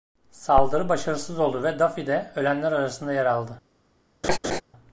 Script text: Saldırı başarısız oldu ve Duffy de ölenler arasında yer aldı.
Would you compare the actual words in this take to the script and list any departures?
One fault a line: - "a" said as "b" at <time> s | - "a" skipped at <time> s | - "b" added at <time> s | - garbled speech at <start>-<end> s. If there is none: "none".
none